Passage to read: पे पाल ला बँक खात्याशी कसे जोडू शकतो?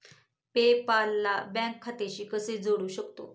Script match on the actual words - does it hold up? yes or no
yes